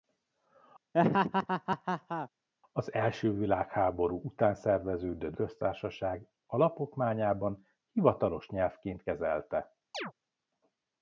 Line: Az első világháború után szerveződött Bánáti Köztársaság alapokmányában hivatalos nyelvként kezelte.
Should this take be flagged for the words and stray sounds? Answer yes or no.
yes